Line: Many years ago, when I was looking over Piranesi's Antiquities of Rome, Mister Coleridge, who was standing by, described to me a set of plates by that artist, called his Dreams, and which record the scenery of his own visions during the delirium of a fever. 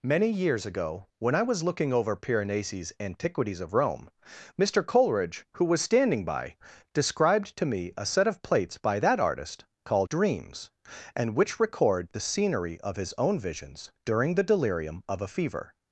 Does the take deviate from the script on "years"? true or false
false